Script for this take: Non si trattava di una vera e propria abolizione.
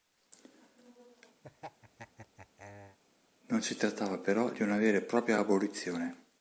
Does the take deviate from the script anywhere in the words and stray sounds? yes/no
yes